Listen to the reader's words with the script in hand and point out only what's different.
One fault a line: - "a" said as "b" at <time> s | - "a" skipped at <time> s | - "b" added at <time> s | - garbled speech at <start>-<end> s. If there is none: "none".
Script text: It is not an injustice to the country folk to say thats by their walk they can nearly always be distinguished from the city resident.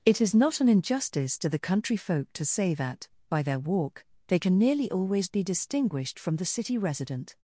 - "thats" said as "that" at 2.7 s